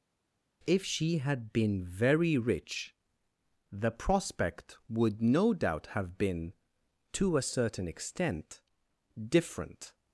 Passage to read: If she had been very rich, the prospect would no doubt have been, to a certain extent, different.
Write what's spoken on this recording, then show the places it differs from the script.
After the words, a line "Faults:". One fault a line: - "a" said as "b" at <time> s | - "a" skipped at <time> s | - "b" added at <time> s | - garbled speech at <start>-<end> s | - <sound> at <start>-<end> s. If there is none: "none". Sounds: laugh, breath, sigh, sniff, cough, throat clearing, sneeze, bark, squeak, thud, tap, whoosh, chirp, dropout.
If she had been very rich, the prospect would no doubt have been, to a certain extent, different.
Faults:
none